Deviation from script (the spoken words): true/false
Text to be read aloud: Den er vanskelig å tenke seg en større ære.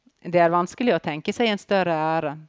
true